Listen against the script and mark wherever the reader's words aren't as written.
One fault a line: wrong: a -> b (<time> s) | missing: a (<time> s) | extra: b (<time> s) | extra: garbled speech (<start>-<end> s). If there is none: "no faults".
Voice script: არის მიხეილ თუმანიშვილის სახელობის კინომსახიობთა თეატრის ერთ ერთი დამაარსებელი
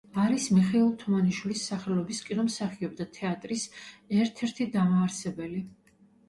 no faults